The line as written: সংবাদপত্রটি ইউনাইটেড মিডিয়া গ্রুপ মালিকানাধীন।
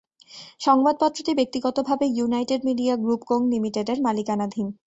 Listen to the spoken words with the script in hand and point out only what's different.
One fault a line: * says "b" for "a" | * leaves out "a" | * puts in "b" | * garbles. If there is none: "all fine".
* puts in "ব্যক্তিগতভাবে"
* puts in "কোং লিমিটেডের"